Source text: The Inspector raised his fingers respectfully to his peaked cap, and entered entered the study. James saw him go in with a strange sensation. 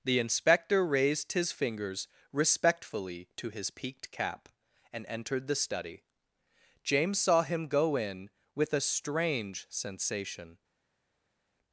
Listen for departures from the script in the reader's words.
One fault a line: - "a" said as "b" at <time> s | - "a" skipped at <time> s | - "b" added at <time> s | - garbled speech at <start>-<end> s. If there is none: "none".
- "entered" skipped at 5.5 s